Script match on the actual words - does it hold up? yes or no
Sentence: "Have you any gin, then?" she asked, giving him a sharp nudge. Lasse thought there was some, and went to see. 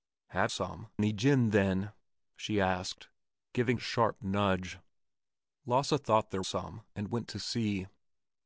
no